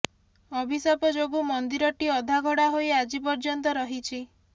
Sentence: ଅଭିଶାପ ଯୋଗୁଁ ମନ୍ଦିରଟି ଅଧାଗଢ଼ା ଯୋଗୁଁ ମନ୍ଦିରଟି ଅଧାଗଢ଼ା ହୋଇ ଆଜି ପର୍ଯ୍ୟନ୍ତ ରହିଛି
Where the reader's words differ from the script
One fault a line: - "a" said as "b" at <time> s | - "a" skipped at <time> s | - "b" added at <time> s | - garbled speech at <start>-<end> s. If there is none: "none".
- "ଯୋଗୁଁ ମନ୍ଦିରଟି ଅଧାଗଢ଼ା" skipped at 2.6 s